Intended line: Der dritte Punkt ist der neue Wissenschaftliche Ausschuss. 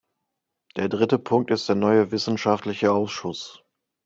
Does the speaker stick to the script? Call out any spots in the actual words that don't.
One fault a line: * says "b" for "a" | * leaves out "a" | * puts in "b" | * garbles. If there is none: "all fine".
all fine